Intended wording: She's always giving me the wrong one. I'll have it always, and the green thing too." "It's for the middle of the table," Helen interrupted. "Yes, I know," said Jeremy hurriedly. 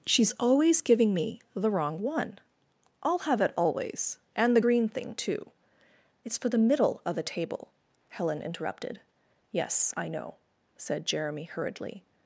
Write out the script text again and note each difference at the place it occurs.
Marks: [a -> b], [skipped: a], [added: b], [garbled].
She's always giving me the wrong one. I'll have it always, and the green thing too." "It's for the middle of the table," Helen interrupted. "Yes, I know," said Jeremy hurriedly.